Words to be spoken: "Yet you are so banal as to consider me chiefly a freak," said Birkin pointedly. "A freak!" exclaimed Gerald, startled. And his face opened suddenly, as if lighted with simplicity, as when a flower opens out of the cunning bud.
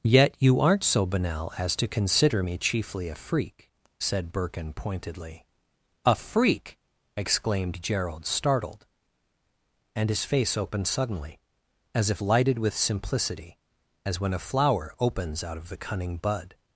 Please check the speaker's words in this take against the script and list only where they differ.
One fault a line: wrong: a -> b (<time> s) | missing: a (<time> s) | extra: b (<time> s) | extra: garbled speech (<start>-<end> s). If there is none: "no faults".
wrong: are -> aren't (0.6 s)